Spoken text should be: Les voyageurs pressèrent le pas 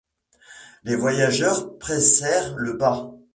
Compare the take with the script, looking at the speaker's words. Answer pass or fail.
pass